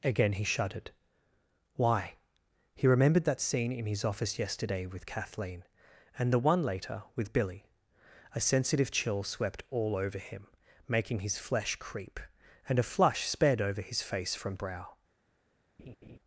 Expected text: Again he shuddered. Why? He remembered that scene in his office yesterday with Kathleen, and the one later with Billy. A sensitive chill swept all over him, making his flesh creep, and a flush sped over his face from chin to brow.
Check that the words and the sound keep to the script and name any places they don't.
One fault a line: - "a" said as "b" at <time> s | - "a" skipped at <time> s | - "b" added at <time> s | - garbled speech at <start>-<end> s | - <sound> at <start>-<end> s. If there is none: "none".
- "chin to" skipped at 14.6 s
- laugh at 15.8-16.2 s